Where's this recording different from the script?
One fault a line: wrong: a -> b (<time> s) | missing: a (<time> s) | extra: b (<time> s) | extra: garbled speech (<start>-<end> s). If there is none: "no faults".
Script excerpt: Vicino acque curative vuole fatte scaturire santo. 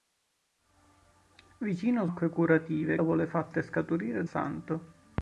no faults